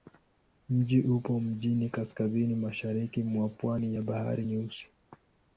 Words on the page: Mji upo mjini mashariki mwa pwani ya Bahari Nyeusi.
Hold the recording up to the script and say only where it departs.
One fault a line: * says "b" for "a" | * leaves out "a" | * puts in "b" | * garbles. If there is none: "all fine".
* puts in "kaskazini"